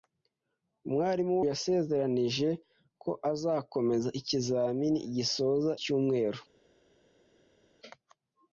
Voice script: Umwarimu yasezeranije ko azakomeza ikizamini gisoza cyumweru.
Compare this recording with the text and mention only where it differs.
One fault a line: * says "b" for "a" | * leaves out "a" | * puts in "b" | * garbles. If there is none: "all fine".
all fine